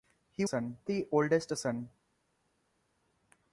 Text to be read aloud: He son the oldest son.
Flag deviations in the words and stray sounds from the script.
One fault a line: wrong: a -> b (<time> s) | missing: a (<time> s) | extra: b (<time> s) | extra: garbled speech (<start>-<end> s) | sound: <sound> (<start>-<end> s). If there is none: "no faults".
no faults